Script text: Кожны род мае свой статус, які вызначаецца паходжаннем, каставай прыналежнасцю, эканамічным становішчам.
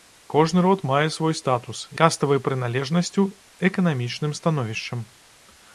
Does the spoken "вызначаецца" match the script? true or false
false